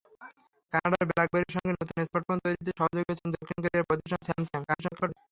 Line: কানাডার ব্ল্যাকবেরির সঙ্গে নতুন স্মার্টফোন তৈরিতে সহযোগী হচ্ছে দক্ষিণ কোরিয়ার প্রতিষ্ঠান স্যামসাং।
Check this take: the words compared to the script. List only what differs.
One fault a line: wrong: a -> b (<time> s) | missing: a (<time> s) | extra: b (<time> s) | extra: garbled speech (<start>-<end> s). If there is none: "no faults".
extra: garbled speech (4.7-5.2 s)